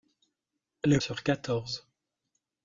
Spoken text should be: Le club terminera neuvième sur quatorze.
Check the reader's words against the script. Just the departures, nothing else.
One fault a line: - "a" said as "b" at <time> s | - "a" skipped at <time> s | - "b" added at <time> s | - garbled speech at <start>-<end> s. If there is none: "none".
- "club terminera neuvième" skipped at 1.0 s